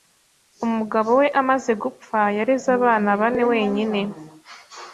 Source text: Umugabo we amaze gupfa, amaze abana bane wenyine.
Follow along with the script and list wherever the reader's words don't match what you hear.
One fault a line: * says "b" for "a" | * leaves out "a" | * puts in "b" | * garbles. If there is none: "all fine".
* says "yareze" for "amaze"